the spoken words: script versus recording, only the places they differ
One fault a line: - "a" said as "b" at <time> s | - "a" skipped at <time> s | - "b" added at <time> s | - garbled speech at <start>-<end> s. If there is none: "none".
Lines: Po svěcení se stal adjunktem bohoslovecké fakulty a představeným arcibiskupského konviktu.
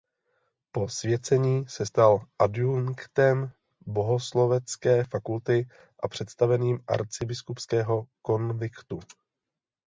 none